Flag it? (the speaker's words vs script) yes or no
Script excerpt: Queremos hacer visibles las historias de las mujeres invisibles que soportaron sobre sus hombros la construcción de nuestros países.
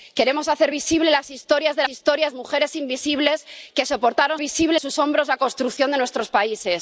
yes